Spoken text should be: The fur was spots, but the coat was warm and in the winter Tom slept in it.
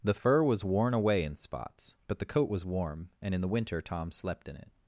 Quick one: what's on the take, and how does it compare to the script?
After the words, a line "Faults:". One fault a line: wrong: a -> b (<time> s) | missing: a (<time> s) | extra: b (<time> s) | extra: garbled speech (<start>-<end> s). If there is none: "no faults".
The fur was worn away in spots, but the coat was warm and in the winter Tom slept in it.
Faults:
extra: worn away in (0.6 s)